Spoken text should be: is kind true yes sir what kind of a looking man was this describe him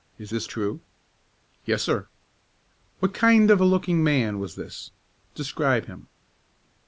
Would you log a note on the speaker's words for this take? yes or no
yes